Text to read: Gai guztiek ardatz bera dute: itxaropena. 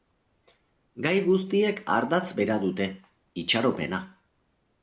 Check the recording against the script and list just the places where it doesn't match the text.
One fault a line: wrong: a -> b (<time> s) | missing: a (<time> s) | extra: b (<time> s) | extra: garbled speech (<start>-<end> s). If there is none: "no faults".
no faults